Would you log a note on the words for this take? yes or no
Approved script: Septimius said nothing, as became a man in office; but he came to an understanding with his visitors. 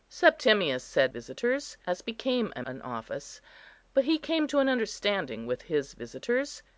yes